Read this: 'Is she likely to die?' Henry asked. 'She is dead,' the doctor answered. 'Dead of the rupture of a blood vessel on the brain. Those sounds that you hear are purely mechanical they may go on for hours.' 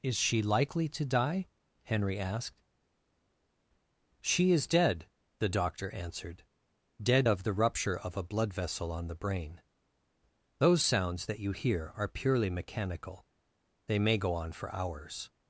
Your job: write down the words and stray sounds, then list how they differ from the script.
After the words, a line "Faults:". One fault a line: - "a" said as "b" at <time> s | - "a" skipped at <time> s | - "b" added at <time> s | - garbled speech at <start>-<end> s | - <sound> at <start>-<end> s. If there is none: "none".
'Is she likely to die?' Henry asked. 'She is dead,' the doctor answered. 'Dead of the rupture of a blood vessel on the brain. Those sounds that you hear are purely mechanical they may go on for hours.'
Faults:
none